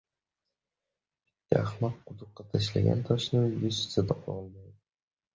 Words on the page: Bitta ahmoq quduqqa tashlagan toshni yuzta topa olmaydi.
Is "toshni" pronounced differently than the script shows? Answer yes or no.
no